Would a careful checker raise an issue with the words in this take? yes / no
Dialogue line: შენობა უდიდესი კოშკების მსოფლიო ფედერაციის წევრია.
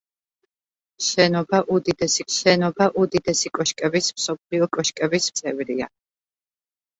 yes